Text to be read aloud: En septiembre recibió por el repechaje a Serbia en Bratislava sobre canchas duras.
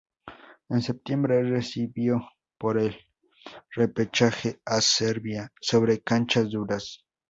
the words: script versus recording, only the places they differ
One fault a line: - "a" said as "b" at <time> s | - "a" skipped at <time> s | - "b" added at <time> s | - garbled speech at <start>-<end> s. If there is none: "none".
- "en Bratislava" skipped at 5.5 s